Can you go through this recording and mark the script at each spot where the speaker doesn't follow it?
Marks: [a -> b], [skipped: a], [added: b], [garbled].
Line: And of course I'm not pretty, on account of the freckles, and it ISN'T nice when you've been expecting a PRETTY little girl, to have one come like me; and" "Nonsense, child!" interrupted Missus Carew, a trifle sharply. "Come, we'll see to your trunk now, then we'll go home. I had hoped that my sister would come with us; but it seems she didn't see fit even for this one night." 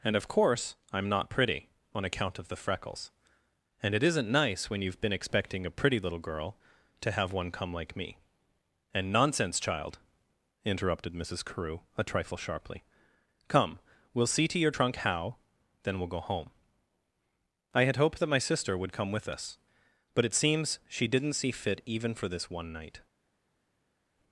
And of course I'm not pretty, on account of the freckles, and it ISN'T nice when you've been expecting a PRETTY little girl, to have one come like me; and" "Nonsense, child!" interrupted Missus Carew, a trifle sharply. "Come, we'll see to your trunk [now, -> how] then we'll go home. I had hoped that my sister would come with us; but it seems she didn't see fit even for this one night."